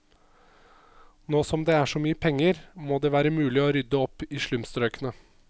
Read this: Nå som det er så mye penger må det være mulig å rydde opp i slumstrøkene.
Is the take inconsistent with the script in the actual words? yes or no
no